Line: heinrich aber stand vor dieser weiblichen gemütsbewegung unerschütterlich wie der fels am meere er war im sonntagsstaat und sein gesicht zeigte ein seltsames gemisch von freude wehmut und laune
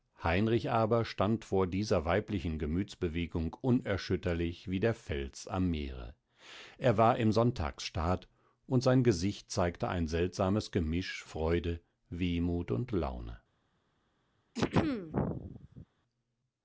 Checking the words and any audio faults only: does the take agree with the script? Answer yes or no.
no